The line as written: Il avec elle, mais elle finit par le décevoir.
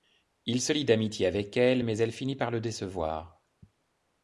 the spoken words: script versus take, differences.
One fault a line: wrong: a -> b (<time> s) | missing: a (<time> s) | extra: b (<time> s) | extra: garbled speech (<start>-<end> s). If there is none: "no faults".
extra: se lie d'amitié (0.6 s)